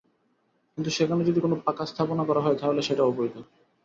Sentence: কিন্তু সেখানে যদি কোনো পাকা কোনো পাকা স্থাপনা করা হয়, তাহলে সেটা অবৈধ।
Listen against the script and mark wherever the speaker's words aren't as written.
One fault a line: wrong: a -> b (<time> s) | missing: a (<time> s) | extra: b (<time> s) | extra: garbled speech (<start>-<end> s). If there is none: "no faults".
missing: কোনো পাকা (1.8 s)